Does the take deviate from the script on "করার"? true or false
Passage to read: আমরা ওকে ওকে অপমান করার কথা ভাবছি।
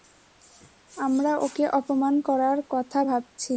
false